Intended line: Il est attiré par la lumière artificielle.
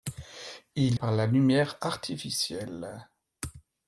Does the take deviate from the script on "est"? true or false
true